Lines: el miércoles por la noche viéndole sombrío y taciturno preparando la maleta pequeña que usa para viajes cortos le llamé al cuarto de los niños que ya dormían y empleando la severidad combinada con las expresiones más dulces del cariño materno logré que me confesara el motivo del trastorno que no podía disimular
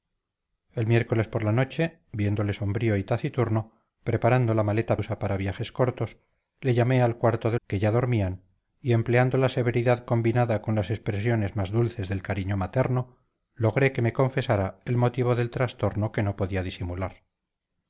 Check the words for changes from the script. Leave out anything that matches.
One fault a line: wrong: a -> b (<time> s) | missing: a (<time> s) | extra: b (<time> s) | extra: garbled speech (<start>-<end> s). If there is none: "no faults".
missing: pequeña que (5.0 s)
missing: los niños (7.6 s)